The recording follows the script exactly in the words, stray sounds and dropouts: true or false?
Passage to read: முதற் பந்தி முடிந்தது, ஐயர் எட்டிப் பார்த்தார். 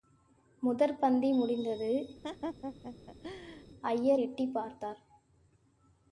false